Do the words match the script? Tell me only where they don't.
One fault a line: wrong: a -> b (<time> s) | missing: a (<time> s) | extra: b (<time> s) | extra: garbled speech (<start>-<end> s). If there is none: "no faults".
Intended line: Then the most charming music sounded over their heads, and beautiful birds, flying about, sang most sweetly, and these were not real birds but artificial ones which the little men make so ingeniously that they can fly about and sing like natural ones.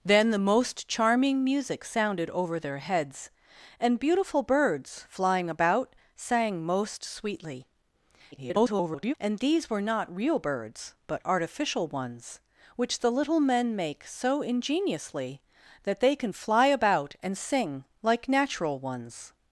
extra: garbled speech (8.3-9.1 s)